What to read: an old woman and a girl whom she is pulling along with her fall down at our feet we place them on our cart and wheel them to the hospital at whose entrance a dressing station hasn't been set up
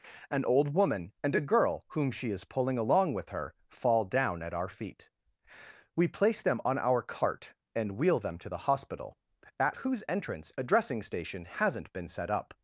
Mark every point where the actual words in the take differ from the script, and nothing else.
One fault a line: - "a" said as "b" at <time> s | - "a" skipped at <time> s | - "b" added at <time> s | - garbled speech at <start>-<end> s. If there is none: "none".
none